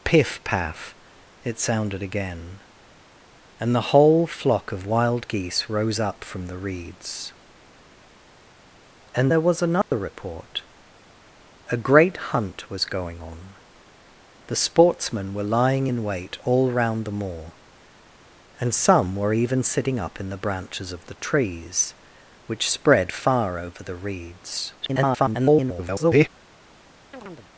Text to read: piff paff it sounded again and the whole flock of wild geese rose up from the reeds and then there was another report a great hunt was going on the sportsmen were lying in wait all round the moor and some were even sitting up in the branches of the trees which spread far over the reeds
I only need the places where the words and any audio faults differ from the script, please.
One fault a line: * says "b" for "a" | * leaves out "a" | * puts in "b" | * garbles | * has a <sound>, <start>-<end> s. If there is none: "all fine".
* leaves out "then"
* has a dropout, 9.8-9.9 s
* garbles
* has a chirp, 27.1-27.5 s